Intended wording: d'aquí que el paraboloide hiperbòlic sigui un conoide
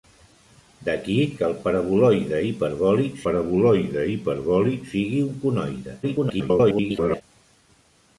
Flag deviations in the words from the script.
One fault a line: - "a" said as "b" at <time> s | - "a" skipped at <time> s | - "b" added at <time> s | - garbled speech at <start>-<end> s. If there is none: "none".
- "paraboloide hiperbòlic" added at 3.2 s
- garbled speech at 6.0-7.2 s